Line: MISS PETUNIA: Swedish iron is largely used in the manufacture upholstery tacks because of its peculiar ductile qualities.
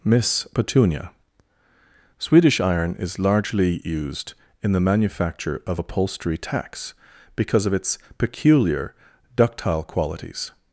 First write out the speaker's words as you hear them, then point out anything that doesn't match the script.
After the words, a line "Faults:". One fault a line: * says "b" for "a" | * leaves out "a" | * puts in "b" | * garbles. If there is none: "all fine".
MISS PETUNIA: Swedish iron is largely used in the manufacture of upholstery tacks because of its peculiar ductile qualities.
Faults:
* puts in "of"